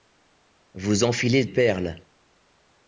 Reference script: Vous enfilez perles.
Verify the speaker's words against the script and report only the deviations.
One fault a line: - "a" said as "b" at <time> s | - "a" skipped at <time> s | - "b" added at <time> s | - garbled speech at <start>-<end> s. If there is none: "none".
none